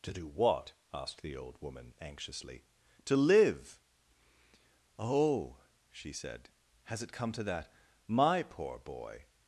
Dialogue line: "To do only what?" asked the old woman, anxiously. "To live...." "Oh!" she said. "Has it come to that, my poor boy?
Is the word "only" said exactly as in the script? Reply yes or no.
no